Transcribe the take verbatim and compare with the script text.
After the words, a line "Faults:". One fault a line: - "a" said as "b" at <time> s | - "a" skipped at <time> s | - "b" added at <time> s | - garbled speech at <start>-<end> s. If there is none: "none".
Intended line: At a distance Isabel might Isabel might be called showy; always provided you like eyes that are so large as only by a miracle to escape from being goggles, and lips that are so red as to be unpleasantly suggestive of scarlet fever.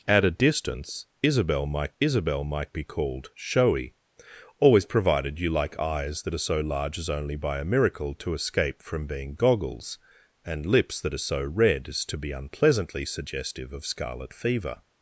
At a distance Isabel might Isabel might be called showy; always provided you like eyes that are so large as only by a miracle to escape from being goggles, and lips that are so red as to be unpleasantly suggestive of scarlet fever.
Faults:
none